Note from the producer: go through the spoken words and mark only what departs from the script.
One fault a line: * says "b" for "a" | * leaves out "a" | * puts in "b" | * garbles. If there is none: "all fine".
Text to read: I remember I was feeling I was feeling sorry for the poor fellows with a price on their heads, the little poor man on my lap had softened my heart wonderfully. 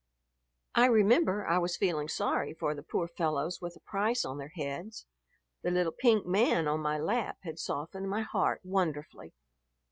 * leaves out "I was feeling"
* says "pink" for "poor"